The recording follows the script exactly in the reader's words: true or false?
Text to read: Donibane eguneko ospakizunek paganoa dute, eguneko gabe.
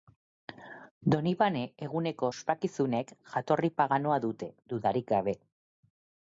false